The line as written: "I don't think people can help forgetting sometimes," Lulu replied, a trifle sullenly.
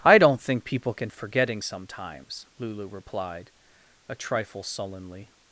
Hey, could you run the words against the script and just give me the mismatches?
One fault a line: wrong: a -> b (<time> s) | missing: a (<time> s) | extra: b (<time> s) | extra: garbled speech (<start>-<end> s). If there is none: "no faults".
missing: help (1.1 s)